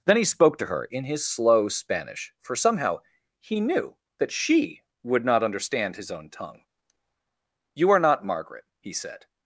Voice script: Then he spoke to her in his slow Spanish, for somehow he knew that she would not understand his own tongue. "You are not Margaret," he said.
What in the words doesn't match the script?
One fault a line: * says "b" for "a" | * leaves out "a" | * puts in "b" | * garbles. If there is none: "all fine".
all fine